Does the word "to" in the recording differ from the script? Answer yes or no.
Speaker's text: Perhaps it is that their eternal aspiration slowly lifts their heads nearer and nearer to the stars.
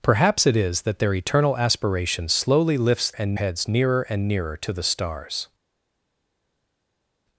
no